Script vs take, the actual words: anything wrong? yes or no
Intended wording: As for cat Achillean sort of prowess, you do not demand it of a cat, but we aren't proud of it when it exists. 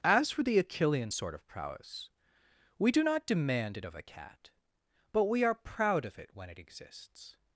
yes